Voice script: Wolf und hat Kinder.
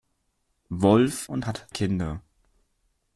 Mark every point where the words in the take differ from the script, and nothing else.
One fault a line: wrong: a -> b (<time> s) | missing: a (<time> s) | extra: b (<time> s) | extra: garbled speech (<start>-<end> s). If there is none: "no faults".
no faults